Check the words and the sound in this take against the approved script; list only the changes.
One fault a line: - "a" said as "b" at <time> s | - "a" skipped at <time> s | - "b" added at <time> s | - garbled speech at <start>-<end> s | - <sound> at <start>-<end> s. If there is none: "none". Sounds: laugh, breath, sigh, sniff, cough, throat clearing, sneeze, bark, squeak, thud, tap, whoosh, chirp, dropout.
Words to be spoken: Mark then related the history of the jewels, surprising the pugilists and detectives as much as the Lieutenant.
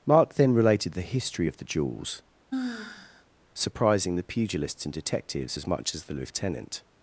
- sigh at 2.5-3.3 s